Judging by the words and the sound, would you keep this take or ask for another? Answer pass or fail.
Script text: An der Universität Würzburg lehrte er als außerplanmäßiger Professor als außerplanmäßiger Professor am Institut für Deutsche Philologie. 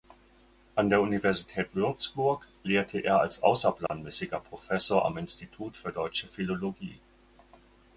fail